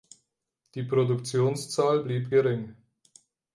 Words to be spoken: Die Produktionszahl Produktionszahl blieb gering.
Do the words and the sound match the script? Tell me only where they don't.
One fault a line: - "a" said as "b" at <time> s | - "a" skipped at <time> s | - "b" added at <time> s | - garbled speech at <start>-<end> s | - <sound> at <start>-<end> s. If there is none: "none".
- "Produktionszahl" skipped at 2.0 s